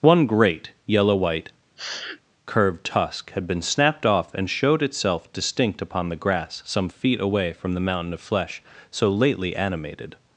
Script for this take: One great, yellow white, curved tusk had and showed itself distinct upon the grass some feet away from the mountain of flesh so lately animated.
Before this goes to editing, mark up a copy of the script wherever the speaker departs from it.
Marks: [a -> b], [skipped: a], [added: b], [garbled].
One great, yellow white, curved tusk had [added: been snapped off] and showed itself distinct upon the grass some feet away from the mountain of flesh so lately animated.